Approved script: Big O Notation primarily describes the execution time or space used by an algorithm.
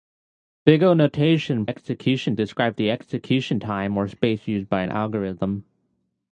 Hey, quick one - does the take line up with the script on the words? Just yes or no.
no